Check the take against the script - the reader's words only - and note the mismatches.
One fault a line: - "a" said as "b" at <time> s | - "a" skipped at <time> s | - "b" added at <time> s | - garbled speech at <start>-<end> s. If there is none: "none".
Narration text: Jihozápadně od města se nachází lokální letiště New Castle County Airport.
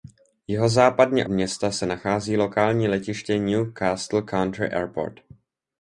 - "od" skipped at 1.2 s